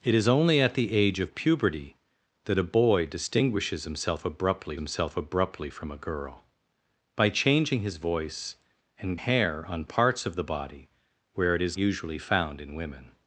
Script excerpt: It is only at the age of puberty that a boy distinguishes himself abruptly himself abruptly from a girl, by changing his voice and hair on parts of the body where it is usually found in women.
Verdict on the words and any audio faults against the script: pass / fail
pass